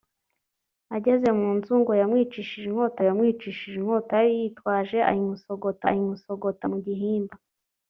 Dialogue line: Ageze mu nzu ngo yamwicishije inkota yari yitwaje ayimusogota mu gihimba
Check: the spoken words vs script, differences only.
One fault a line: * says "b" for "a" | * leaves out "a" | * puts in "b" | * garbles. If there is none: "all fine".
* puts in "yamwicishije inkota"
* puts in "ayimusogota"